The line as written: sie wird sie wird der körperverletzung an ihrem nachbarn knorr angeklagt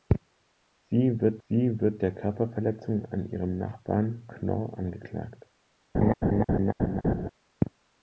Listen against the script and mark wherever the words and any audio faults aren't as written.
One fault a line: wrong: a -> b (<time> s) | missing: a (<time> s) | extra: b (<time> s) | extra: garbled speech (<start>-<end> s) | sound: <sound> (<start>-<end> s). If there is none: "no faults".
sound: laugh (5.9-7.3 s)